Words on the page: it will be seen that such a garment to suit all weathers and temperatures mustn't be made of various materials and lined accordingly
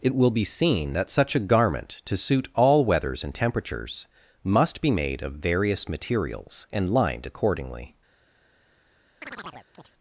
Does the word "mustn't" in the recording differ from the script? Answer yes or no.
yes